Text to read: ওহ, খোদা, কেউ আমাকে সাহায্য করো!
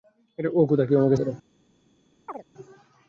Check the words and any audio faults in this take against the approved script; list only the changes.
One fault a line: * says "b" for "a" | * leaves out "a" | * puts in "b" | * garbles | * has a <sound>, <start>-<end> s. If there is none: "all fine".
* leaves out "সাহায্য"
* has a chirp, 2.3-2.4 s